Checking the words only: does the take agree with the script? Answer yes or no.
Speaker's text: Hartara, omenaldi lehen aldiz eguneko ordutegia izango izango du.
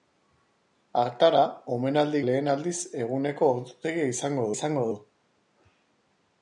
yes